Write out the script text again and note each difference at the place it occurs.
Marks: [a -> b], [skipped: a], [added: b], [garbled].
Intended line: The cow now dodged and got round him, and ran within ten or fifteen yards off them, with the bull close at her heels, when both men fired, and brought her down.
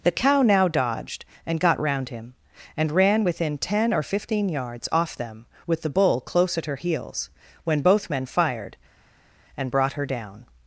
The cow now dodged and got round him, and ran within ten or fifteen yards off them, with the bull close at her heels, when both men fired, and brought her down.